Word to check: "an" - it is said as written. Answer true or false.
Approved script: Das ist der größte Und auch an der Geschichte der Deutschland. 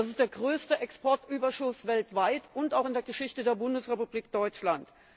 false